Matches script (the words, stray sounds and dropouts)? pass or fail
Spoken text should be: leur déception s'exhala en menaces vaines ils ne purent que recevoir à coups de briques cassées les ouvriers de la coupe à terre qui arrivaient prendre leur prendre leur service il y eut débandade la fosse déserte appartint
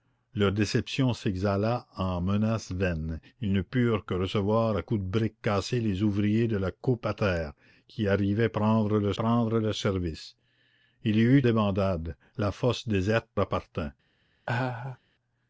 fail